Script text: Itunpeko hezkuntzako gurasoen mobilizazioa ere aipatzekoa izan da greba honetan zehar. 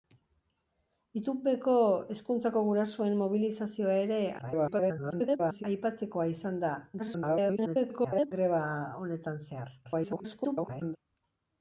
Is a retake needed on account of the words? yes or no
yes